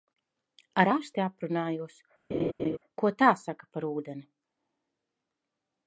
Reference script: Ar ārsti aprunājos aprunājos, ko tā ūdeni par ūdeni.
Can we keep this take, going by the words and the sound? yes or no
no